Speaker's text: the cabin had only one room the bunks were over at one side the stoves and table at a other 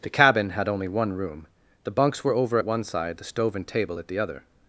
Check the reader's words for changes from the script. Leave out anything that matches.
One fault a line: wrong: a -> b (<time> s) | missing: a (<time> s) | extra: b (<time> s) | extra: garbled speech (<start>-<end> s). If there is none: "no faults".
wrong: stoves -> stove (3.2 s)
wrong: a -> the (4.1 s)